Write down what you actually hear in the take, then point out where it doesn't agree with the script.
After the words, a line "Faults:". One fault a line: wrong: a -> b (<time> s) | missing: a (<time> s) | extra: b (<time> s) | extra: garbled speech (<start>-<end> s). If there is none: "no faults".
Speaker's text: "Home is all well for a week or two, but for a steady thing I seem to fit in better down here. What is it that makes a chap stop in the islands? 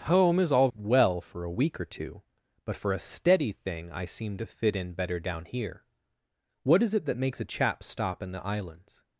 "Home is all well for a week or two, but for a steady thing I seem to fit in better down here. What is it that makes a chap stop in the islands?
Faults:
no faults